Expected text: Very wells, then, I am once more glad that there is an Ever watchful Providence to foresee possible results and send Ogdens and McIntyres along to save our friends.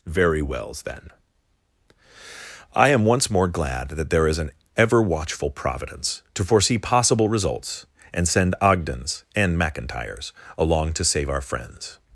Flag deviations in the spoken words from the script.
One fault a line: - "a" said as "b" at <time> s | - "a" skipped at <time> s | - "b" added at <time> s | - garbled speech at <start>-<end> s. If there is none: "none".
none